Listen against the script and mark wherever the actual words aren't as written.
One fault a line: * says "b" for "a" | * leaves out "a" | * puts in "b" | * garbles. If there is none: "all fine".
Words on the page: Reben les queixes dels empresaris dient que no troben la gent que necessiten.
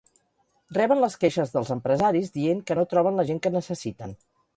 all fine